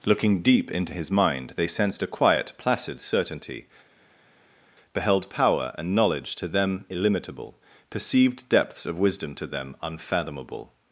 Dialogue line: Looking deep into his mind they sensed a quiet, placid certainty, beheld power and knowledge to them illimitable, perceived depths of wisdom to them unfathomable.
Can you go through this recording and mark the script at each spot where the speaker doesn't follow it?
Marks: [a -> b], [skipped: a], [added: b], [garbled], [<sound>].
Looking deep into his mind they sensed a quiet, placid certainty, beheld power and knowledge to them illimitable, perceived depths of wisdom to them unfathomable.